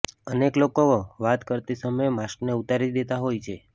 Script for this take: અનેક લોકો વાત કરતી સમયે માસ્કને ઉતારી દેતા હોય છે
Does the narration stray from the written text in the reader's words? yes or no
no